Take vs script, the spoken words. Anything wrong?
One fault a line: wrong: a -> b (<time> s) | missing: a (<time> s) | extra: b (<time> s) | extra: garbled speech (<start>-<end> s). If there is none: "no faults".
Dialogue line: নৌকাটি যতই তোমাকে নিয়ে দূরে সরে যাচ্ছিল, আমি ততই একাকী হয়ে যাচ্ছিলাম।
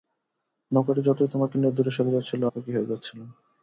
missing: আমি ততই (2.4 s)